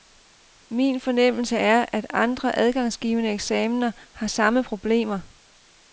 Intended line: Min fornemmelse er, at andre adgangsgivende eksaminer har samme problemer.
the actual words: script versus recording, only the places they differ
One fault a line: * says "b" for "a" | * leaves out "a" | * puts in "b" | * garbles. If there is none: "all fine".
all fine